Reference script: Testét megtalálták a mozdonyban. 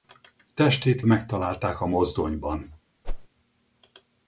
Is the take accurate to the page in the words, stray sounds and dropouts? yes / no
no